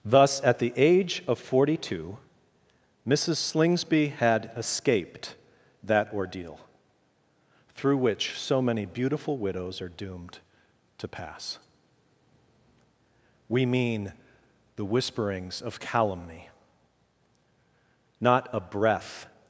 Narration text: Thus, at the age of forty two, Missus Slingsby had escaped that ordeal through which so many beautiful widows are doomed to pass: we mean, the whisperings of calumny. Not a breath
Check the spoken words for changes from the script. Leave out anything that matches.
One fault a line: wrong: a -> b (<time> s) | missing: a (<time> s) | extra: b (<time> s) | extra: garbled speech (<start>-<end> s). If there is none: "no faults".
no faults